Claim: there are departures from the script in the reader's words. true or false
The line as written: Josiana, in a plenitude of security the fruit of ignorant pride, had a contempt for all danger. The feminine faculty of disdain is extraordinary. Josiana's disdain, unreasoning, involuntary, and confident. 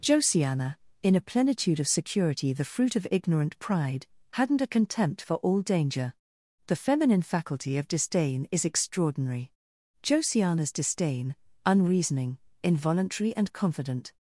true